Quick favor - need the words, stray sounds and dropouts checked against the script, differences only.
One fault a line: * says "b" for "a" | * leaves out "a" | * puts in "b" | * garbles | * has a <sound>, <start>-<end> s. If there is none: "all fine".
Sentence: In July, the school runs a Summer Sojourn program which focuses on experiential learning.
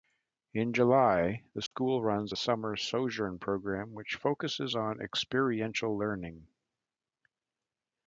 * has a dropout, 1.7-1.7 s